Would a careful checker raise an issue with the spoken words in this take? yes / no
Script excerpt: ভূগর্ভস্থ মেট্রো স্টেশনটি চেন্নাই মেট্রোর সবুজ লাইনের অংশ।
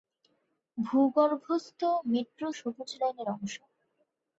yes